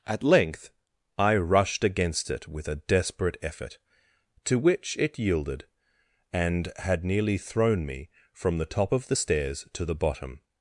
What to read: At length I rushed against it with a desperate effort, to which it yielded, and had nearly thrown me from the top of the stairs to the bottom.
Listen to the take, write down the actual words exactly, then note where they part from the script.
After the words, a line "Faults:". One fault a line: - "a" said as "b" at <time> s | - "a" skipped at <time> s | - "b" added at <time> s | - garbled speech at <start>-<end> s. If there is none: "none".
At length I rushed against it with a desperate effort, to which it yielded, and had nearly thrown me from the top of the stairs to the bottom.
Faults:
none